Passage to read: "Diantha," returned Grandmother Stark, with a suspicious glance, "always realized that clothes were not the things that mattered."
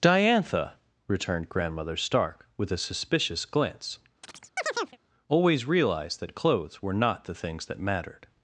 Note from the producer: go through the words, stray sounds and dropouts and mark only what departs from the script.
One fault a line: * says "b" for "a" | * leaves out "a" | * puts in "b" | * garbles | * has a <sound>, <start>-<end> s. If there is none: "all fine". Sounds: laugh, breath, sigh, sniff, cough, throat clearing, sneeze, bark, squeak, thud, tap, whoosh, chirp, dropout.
* has a chirp, 4.2-5.0 s